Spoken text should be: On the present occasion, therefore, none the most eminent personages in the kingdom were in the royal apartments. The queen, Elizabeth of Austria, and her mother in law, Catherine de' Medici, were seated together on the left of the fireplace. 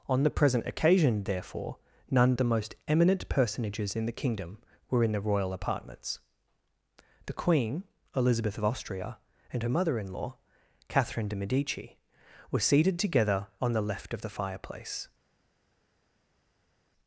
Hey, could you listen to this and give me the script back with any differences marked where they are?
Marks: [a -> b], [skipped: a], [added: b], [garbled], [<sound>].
On the present occasion, therefore, none the most eminent personages in the kingdom were in the royal apartments. The queen, Elizabeth of Austria, and her mother in law, Catherine de' Medici, were seated together on the left of the fireplace.